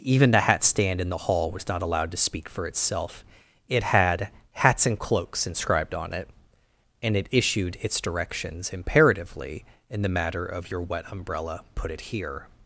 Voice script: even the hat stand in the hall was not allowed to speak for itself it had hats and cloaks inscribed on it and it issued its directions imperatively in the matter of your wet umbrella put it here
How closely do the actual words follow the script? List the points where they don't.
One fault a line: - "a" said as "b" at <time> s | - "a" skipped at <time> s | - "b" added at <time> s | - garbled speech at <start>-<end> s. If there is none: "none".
none